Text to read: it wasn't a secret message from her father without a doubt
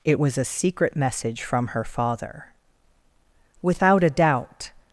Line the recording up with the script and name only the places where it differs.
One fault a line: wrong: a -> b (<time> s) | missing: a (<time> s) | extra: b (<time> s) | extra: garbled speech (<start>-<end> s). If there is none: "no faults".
wrong: wasn't -> was (0.2 s)